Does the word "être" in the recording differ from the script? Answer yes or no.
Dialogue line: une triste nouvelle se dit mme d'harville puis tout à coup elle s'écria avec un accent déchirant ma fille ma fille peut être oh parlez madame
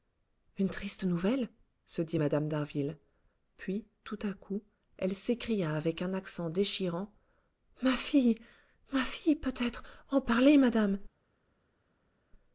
no